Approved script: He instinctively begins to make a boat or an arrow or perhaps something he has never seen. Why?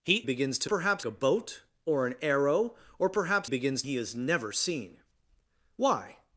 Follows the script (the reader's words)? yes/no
no